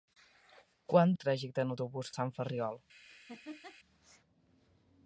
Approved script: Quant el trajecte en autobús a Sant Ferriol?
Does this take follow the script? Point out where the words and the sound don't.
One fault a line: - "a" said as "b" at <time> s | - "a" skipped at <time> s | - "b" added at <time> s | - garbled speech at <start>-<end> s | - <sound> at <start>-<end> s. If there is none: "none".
- laugh at 3.1-3.8 s